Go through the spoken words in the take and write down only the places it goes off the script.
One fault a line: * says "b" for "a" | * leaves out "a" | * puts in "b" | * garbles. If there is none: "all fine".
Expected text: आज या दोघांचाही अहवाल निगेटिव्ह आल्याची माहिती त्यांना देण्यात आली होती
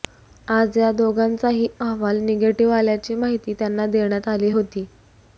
all fine